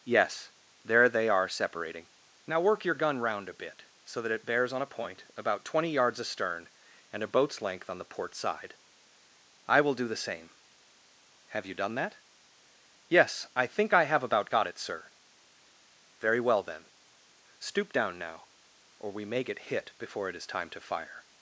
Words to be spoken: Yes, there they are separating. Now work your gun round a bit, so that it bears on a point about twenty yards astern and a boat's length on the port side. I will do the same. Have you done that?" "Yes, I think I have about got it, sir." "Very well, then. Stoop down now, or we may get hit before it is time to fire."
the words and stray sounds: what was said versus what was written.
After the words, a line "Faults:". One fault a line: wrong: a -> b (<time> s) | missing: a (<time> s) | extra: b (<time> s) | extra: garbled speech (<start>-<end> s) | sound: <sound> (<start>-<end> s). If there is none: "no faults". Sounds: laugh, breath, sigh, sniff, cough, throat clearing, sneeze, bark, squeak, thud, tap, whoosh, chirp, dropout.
Yes, there they are separating. Now work your gun round a bit, so that it bears on a point about twenty yards astern and a boat's length on the port side. I will do the same. Have you done that?" "Yes, I think I have about got it, sir." "Very well, then. Stoop down now, or we may get hit before it is time to fire."
Faults:
no faults